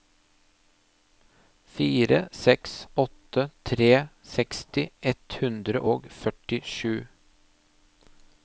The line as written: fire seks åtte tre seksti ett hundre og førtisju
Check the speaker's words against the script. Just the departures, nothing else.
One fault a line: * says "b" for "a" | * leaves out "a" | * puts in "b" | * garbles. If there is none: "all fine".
all fine